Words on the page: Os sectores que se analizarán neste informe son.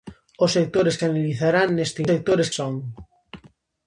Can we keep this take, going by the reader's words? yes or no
no